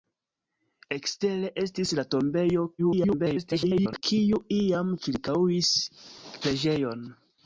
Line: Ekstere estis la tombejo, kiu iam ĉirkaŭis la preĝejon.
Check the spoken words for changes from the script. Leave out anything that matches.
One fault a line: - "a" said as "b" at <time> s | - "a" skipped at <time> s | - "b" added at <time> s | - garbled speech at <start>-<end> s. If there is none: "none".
- garbled speech at 2.8-4.0 s
- "la" skipped at 5.7 s